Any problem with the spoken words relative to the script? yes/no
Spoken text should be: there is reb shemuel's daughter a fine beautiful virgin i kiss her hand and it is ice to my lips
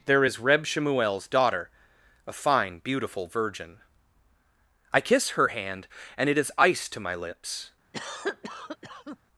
no